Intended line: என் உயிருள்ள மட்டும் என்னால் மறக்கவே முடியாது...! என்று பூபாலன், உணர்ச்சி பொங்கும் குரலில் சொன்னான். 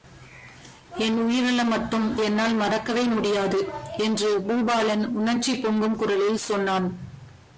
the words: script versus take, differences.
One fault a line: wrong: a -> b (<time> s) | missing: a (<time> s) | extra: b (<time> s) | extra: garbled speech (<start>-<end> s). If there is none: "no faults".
no faults